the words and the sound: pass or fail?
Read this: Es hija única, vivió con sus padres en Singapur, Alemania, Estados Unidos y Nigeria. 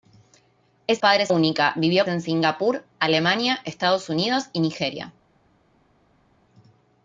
fail